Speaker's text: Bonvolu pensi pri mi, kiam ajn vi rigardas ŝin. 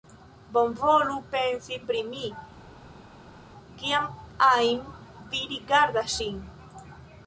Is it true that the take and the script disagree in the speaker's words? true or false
false